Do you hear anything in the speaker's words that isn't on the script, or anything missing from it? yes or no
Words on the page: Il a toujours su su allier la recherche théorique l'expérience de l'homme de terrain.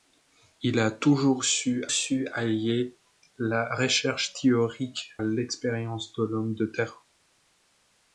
no